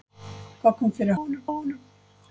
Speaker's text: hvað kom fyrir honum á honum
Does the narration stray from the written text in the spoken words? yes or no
no